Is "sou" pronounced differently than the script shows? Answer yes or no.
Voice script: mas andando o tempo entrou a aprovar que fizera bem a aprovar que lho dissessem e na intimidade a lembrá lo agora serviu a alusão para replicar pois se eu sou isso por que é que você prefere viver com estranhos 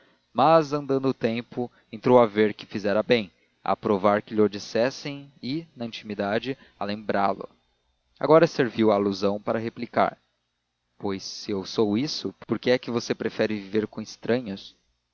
no